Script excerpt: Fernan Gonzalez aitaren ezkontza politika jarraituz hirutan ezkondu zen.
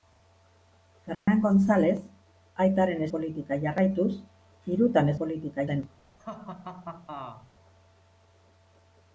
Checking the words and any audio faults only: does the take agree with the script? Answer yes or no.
no